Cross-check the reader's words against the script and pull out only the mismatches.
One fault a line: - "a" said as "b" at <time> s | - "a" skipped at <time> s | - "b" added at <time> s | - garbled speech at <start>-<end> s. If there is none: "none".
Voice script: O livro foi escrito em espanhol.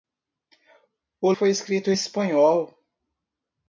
- "livro" skipped at 1.3 s
- "em" skipped at 1.9 s